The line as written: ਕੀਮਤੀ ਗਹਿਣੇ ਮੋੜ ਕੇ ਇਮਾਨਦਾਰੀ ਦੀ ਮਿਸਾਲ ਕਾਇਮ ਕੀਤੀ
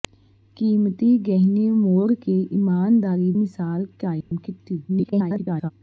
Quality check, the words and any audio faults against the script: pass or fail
fail